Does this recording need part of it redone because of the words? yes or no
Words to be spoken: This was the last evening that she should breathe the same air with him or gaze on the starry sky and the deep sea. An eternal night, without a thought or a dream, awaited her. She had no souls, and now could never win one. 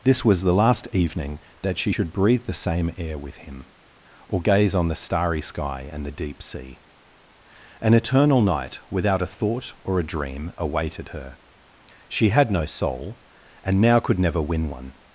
yes